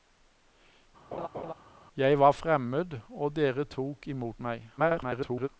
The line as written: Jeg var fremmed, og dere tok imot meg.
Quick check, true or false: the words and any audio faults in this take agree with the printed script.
false